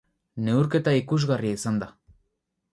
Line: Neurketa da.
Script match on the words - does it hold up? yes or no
no